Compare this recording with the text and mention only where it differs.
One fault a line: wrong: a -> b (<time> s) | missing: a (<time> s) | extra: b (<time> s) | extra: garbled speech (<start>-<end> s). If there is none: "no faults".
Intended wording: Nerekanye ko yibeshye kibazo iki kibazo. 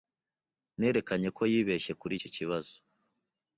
wrong: kibazo -> kuri (2.0 s)